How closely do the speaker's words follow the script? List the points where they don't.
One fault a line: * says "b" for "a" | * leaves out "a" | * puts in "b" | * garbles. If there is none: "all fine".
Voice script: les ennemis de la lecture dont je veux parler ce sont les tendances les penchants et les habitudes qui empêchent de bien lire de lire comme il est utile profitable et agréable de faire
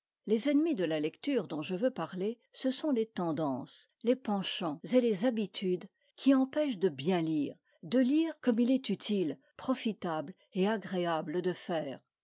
all fine